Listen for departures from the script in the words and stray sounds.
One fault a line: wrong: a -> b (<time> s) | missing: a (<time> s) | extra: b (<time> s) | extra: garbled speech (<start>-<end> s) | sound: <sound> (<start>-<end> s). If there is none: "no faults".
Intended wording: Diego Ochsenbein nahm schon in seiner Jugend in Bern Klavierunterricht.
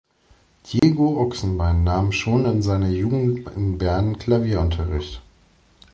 sound: dropout (0.8-0.8 s)